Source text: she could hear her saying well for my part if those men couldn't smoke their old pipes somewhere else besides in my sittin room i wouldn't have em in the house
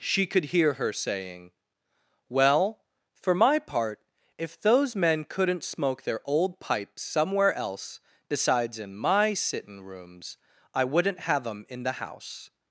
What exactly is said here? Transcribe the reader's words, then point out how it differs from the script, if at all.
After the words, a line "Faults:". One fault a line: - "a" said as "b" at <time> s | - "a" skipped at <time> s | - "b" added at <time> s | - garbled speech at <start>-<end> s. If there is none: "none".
she could hear her saying well for my part if those men couldn't smoke their old pipes somewhere else besides in my sittin rooms i wouldn't have em in the house
Faults:
- "room" said as "rooms" at 9.8 s